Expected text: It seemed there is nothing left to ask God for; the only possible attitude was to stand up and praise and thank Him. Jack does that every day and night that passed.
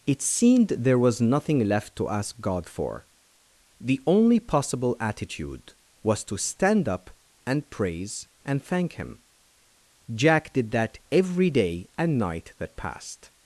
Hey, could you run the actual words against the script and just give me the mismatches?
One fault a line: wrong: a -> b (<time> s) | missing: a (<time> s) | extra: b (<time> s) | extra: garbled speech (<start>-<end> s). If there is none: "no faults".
wrong: is -> was (1.0 s)
wrong: does -> did (10.5 s)